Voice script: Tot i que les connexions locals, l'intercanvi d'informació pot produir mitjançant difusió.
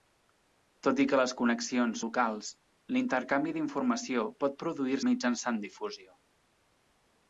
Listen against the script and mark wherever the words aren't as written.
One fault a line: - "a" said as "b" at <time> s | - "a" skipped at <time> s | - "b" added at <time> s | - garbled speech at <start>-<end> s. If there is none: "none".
none